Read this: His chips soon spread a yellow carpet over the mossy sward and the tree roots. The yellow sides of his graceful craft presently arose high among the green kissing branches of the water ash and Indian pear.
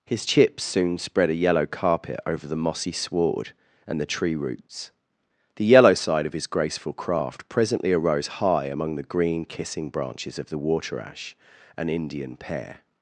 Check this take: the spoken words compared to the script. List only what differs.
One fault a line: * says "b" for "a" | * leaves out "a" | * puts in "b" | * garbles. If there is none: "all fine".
* says "side" for "sides"